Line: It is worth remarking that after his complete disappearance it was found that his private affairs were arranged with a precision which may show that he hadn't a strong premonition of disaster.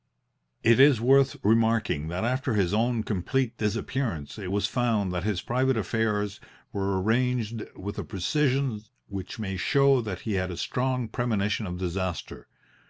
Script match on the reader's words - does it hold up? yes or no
no